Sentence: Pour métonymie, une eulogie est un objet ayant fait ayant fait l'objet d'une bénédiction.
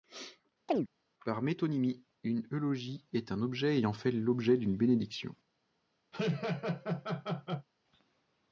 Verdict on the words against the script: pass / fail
fail